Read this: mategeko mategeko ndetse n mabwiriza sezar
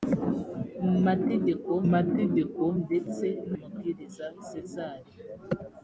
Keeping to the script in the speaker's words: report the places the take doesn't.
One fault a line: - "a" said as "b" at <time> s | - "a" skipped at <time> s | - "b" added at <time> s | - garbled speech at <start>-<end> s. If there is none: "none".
none